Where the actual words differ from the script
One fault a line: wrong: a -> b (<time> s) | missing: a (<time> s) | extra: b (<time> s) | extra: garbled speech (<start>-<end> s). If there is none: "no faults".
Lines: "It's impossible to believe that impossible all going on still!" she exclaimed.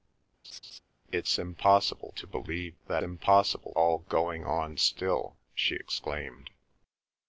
no faults